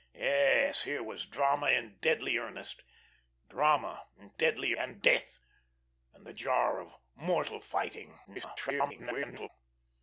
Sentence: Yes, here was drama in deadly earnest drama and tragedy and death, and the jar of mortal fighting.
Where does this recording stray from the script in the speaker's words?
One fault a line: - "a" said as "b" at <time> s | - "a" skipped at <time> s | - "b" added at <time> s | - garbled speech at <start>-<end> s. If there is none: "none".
- "tragedy" said as "deadly" at 4.4 s
- garbled speech at 8.2-9.5 s